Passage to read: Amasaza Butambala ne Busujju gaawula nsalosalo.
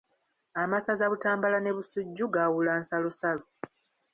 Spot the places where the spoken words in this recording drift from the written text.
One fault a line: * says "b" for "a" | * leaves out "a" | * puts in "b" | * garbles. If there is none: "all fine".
all fine